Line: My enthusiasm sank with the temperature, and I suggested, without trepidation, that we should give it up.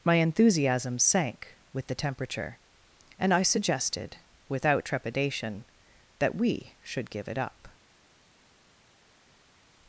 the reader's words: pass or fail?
pass